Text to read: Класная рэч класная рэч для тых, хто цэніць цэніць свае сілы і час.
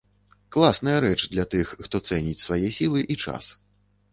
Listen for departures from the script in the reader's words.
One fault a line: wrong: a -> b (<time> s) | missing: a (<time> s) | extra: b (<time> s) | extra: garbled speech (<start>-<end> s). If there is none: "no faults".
missing: класная рэч (1.2 s)
missing: цэніць (2.4 s)